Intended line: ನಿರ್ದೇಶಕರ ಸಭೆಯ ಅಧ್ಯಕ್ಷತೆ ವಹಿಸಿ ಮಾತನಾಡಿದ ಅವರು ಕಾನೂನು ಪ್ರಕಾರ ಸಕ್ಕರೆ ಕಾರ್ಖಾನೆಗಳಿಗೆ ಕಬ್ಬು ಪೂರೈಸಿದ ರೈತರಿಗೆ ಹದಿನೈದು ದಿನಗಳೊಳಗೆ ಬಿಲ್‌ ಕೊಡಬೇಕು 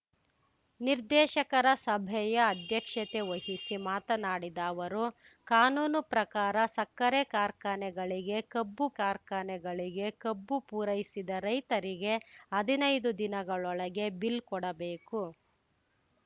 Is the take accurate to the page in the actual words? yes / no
no